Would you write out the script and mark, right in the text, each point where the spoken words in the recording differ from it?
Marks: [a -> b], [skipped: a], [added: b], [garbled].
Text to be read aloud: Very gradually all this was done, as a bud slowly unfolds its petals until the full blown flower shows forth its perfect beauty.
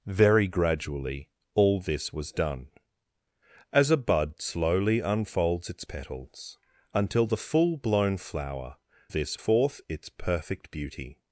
Very gradually all this was done, as a bud slowly unfolds its petals until the full blown flower [shows -> this] forth its perfect beauty.